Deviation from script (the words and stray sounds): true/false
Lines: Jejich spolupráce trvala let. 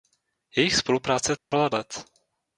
true